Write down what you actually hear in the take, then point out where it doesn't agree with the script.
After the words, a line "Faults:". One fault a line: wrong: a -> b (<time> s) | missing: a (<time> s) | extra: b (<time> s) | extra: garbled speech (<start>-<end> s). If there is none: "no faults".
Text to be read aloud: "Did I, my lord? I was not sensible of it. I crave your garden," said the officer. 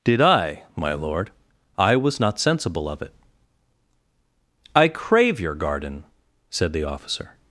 "Did I, my lord? I was not sensible of it. I crave your garden," said the officer.
Faults:
no faults